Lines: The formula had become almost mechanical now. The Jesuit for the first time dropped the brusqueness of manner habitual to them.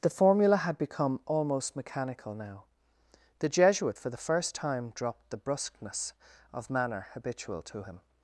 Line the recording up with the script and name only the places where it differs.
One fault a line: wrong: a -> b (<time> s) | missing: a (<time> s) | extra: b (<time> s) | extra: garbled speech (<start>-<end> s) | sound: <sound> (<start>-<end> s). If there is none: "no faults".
wrong: them -> him (7.8 s)